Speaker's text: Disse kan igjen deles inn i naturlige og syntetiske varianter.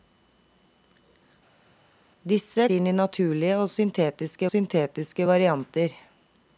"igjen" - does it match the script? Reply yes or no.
no